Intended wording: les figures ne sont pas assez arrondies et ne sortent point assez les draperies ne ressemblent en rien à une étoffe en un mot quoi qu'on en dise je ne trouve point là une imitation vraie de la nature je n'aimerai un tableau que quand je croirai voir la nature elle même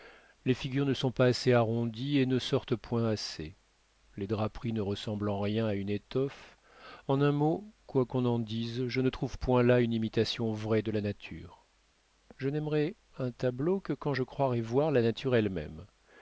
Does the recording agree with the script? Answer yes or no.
yes